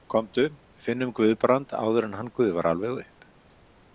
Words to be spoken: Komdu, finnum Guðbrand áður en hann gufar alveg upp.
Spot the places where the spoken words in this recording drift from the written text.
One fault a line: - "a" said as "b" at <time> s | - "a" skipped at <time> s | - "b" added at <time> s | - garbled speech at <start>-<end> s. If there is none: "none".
none